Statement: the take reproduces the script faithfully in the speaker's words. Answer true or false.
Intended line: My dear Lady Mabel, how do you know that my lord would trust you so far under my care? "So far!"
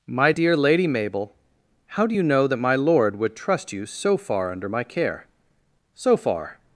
true